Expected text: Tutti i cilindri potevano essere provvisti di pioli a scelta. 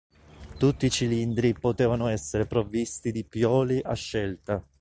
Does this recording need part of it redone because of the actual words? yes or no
no